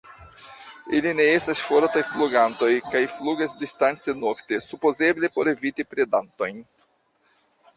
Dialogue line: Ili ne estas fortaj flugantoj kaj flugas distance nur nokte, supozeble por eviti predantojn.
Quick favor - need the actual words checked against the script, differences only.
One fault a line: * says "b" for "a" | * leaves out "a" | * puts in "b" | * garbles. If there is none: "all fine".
* leaves out "nur"